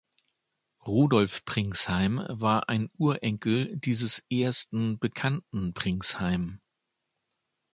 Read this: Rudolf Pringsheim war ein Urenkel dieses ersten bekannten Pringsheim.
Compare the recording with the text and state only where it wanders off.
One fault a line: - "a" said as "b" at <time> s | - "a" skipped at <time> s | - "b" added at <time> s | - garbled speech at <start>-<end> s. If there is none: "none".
none